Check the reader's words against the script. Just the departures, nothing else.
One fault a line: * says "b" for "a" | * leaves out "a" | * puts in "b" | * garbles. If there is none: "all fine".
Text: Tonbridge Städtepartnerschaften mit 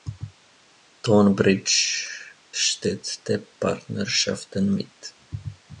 all fine